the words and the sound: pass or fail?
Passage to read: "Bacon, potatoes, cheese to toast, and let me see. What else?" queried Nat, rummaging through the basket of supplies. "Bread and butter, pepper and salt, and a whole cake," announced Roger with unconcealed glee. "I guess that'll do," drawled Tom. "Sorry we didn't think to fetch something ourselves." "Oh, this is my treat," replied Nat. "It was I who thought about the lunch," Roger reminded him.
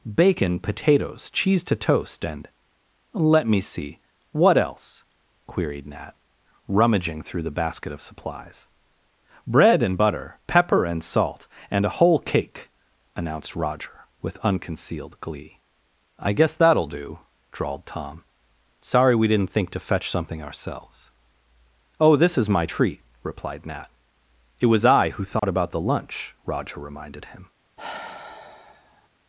fail